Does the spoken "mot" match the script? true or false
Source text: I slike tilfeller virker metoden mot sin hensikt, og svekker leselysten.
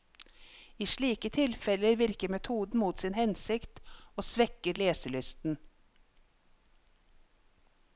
true